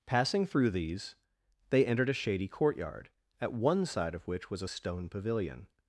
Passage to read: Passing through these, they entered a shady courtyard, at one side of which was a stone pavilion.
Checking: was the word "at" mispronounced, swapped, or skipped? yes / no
no